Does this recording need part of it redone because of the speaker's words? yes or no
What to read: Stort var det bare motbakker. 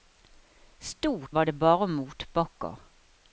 no